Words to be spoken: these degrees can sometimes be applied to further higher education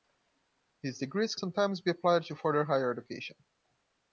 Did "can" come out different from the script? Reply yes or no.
yes